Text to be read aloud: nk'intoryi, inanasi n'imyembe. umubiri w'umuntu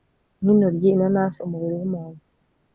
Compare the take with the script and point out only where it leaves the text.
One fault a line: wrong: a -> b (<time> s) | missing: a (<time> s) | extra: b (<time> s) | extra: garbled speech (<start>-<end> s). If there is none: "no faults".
missing: n'imyembe (1.4 s)